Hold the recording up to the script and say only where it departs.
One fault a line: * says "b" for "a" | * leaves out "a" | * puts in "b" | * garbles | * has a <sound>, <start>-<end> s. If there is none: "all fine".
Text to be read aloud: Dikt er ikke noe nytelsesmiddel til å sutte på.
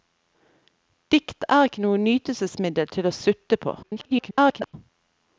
* garbles